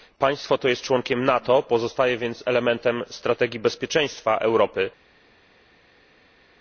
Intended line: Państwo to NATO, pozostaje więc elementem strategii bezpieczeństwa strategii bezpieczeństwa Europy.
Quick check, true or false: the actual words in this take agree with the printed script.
false